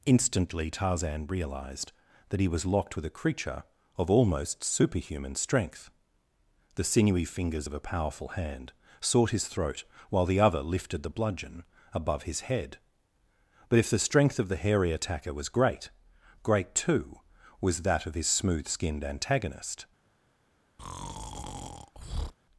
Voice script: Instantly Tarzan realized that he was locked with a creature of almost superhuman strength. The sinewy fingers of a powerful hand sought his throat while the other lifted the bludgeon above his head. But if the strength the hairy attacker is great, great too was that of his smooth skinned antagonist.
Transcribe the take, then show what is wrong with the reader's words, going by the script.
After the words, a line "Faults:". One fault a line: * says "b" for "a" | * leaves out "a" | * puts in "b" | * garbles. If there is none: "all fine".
Instantly Tarzan realized that he was locked with a creature of almost superhuman strength. The sinewy fingers of a powerful hand sought his throat while the other lifted the bludgeon above his head. But if the strength of the hairy attacker was great, great too was that of his smooth skinned antagonist.
Faults:
* puts in "of"
* says "was" for "is"